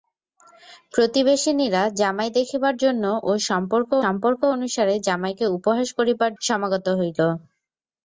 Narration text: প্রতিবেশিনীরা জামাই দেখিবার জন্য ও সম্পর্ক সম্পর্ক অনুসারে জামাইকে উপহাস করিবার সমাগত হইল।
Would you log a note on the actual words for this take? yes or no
no